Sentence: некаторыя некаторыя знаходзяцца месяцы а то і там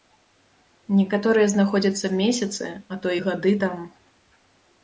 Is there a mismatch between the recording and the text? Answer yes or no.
yes